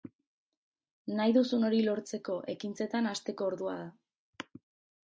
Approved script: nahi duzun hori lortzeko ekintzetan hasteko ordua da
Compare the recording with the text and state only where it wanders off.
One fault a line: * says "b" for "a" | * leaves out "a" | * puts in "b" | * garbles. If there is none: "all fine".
all fine